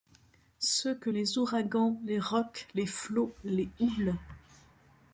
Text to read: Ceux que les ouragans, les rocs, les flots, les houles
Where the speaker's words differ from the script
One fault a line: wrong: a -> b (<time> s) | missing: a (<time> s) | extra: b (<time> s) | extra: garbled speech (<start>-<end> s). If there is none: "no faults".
no faults